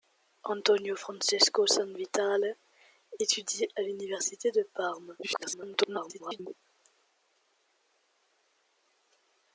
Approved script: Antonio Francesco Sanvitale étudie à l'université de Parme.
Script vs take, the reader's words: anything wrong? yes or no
yes